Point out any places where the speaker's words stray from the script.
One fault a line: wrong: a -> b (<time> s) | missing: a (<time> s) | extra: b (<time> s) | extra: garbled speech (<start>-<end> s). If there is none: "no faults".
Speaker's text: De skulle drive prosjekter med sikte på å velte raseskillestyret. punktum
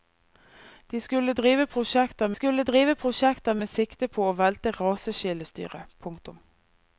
extra: skulle drive prosjekter (2.3 s)